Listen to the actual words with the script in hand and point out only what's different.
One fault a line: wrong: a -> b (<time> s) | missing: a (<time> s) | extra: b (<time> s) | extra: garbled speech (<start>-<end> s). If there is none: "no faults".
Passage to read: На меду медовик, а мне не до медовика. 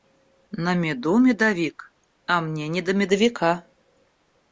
no faults